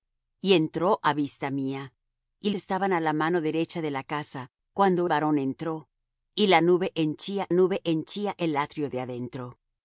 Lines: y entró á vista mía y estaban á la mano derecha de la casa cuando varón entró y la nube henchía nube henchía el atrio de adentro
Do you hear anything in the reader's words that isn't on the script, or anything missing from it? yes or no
no